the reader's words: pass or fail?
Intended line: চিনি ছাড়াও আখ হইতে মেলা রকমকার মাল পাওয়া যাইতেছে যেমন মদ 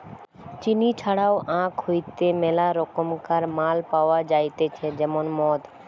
pass